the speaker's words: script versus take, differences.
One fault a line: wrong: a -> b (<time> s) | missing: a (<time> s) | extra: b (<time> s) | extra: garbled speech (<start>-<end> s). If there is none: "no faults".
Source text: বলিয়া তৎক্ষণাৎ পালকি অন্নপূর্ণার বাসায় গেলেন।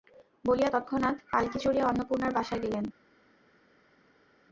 extra: চড়িয়া (1.6 s)